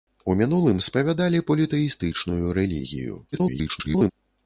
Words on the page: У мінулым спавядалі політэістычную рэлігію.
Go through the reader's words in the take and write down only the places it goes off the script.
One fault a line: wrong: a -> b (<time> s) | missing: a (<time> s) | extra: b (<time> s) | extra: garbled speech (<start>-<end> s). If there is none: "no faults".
extra: garbled speech (3.3-4.1 s)